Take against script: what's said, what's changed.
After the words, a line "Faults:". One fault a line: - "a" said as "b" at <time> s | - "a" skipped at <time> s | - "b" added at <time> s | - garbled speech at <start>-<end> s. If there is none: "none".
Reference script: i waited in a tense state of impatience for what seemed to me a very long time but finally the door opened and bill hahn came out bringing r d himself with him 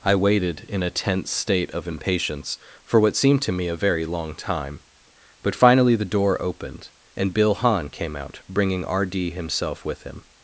i waited in a tense state of impatience for what seemed to me a very long time but finally the door opened and bill hahn came out bringing r d himself with him
Faults:
none